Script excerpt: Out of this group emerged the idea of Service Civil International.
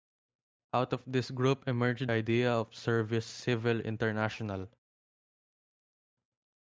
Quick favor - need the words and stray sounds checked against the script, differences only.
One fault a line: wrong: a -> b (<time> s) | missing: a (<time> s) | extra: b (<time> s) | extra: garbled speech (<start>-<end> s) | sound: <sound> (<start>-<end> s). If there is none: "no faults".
missing: the (2.1 s)